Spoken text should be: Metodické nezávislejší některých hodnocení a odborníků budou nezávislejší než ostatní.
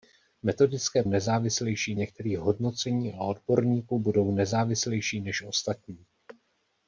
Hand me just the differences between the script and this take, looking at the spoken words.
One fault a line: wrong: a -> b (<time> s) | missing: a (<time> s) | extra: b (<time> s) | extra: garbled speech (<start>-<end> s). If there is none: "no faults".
no faults